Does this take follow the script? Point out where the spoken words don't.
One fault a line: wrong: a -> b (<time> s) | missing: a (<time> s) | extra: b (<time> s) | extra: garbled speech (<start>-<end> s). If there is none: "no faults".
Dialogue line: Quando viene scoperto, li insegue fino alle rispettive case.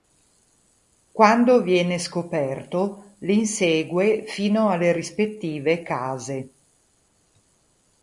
no faults